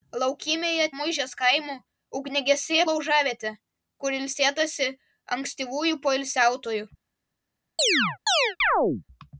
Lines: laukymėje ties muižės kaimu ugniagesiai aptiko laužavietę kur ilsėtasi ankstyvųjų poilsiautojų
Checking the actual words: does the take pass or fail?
fail